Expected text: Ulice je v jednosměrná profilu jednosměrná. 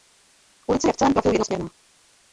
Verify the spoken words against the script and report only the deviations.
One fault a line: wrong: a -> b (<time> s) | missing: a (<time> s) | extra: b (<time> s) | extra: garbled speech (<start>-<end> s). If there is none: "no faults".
wrong: jednosměrná -> celém (1.0 s)